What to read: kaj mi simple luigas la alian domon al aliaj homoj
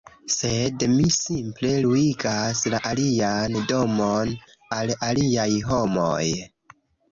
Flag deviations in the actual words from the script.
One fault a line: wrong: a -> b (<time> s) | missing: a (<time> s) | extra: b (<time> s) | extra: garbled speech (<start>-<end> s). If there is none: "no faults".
wrong: kaj -> sed (0.3 s)